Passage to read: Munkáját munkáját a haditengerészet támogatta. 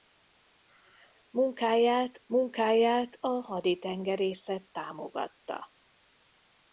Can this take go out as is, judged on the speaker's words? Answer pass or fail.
pass